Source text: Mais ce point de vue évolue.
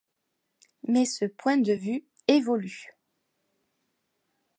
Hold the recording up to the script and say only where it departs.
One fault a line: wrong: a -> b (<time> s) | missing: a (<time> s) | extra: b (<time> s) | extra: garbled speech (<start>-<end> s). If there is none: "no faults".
no faults